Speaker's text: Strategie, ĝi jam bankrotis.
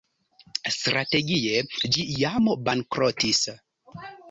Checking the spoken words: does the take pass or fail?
pass